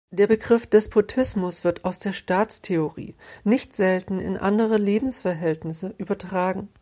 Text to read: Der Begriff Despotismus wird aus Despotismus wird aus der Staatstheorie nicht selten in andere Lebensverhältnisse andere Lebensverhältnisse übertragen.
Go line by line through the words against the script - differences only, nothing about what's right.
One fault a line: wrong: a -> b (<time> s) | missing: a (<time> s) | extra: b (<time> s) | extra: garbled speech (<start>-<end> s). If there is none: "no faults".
missing: Despotismus wird aus (2.0 s)
missing: andere Lebensverhältnisse (5.9 s)